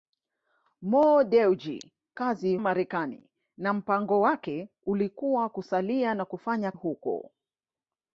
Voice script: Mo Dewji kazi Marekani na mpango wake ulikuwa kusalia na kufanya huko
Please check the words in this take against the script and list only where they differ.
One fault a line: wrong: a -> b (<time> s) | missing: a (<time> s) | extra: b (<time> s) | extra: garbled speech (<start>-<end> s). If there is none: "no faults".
no faults